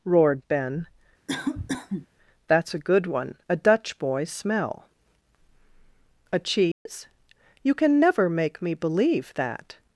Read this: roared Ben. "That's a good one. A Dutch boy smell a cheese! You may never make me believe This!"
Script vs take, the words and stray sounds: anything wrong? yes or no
yes